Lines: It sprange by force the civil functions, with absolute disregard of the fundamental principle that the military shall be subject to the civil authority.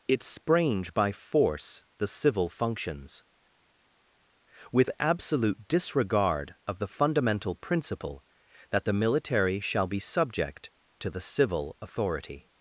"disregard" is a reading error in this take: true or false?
false